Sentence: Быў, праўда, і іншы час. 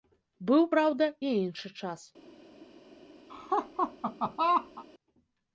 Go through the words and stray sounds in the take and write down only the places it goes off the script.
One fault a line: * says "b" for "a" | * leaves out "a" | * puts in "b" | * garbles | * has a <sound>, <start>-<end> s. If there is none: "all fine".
* has a laugh, 3.3-4.8 s